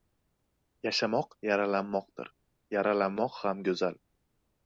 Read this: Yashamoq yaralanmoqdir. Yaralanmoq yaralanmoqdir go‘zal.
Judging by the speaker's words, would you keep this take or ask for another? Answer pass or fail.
fail